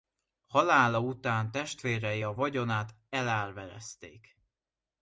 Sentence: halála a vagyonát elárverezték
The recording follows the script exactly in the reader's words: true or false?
false